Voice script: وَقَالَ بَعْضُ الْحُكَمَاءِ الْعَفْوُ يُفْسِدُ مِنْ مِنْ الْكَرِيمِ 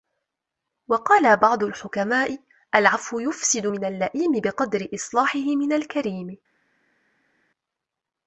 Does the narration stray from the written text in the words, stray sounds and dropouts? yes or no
yes